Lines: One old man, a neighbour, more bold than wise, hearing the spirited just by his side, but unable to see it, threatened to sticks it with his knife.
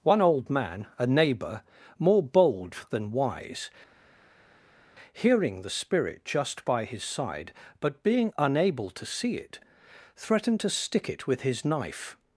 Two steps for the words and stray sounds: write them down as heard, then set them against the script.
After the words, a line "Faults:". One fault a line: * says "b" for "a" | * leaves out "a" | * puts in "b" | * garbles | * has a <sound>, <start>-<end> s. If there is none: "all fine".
One old man, a neighbour, more bold than wise, hearing the spirit just by his side, but being unable to see it, threatened to stick it with his knife.
Faults:
* says "spirit" for "spirited"
* puts in "being"
* says "stick" for "sticks"